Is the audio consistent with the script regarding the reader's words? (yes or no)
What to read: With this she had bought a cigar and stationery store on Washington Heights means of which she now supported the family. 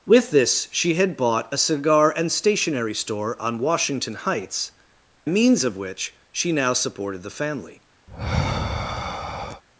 yes